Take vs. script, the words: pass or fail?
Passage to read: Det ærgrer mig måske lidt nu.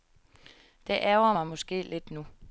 pass